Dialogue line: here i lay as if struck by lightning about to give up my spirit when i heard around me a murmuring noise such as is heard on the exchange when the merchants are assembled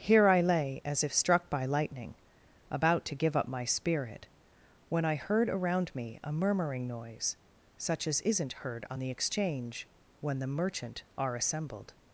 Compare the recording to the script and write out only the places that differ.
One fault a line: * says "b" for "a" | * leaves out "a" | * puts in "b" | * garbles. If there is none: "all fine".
* says "isn't" for "is"
* says "merchant" for "merchants"